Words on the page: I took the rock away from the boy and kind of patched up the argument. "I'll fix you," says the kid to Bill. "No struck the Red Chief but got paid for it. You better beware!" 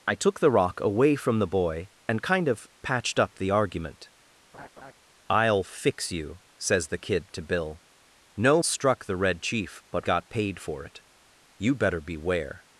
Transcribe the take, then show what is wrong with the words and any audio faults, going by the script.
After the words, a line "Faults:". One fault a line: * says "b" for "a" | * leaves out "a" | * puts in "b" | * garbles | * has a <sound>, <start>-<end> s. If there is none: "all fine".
I took the rock away from the boy and kind of patched up the argument. "I'll fix you," says the kid to Bill. "No struck the Red Chief but got paid for it. You better beware!"
Faults:
* has a laugh, 4.5-4.9 s